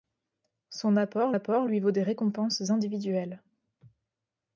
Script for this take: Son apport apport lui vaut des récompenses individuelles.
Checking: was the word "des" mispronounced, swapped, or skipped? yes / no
no